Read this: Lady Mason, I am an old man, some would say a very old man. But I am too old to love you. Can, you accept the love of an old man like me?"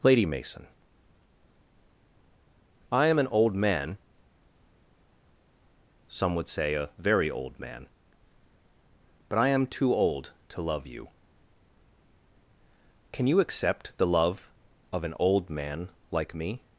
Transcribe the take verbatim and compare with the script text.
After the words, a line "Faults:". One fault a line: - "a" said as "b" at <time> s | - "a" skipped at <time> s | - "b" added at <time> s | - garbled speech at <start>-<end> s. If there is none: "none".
Lady Mason, I am an old man, some would say a very old man. But I am too old to love you. Can, you accept the love of an old man like me?"
Faults:
none